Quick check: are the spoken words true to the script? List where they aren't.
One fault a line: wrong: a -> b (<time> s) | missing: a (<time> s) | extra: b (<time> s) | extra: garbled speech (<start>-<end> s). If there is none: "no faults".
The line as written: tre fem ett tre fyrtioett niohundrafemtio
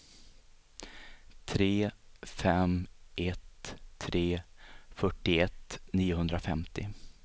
no faults